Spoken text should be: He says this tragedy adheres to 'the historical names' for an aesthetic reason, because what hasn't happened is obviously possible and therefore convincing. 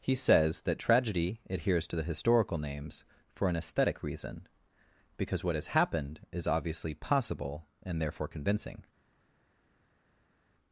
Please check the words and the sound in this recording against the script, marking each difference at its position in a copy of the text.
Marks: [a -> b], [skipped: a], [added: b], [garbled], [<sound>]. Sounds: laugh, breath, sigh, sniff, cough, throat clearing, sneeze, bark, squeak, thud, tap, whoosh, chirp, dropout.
He says [this -> that] tragedy adheres to 'the historical names' for an aesthetic reason, because what [hasn't -> has] happened is obviously possible and therefore convincing.